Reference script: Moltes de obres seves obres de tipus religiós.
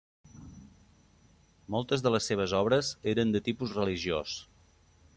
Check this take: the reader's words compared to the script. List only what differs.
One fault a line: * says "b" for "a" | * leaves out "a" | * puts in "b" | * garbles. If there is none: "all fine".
* says "les" for "obres"
* puts in "eren"